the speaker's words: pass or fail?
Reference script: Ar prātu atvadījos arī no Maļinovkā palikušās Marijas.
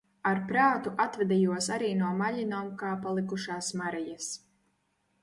pass